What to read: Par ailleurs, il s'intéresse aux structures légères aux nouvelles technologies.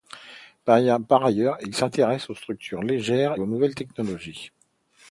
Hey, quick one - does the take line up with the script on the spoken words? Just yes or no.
yes